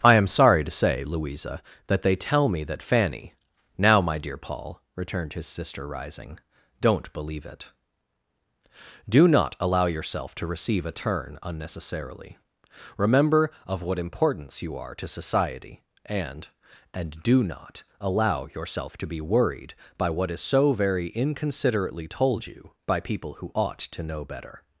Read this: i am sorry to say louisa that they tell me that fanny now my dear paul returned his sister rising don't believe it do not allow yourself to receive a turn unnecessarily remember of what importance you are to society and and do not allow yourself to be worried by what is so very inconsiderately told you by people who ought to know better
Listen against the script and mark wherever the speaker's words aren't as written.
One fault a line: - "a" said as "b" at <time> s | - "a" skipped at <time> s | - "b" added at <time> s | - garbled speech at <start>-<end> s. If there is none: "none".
none